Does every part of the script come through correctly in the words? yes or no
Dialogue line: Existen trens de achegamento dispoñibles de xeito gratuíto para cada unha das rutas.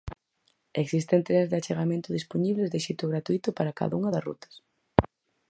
yes